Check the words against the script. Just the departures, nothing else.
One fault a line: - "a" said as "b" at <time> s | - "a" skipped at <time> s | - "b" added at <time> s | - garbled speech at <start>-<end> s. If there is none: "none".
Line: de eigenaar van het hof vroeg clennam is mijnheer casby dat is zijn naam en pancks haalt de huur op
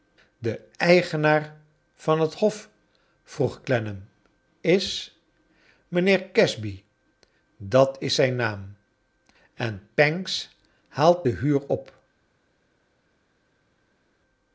none